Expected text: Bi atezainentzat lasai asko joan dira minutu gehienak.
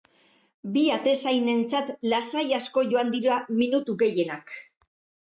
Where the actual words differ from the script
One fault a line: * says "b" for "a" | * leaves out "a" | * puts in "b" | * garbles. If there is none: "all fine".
all fine